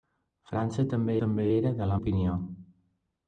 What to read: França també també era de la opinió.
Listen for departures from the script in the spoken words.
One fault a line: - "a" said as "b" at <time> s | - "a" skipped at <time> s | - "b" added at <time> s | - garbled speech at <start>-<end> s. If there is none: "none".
none